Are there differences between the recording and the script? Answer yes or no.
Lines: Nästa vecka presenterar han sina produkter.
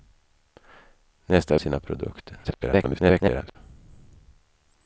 yes